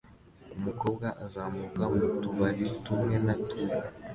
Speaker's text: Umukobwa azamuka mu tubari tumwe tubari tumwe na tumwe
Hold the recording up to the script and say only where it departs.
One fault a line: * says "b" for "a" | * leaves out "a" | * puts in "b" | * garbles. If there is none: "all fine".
* leaves out "tubari tumwe"